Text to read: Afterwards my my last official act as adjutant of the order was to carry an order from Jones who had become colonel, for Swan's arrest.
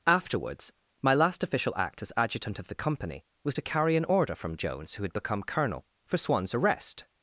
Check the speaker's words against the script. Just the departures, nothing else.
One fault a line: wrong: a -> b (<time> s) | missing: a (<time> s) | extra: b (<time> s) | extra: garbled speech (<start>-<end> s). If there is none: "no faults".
missing: my (1.1 s)
wrong: order -> company (2.8 s)